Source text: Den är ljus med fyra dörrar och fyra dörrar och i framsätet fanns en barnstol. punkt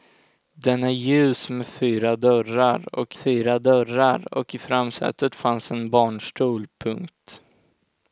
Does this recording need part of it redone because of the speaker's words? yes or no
no